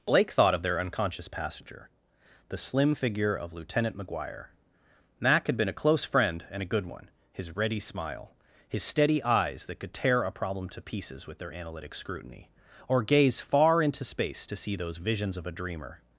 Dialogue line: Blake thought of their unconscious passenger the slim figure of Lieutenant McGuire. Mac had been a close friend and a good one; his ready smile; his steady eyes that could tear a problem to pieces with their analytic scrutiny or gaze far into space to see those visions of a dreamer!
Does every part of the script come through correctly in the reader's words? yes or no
yes